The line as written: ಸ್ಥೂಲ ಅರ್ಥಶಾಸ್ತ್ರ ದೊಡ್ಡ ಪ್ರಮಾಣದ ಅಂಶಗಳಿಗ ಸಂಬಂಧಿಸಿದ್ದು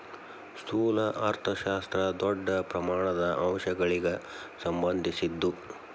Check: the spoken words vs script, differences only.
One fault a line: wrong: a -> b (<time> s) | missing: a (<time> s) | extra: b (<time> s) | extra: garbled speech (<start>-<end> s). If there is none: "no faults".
no faults